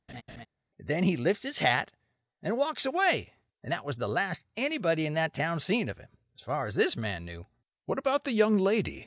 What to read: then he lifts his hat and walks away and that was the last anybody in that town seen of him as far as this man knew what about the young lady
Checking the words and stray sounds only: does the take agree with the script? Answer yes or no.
no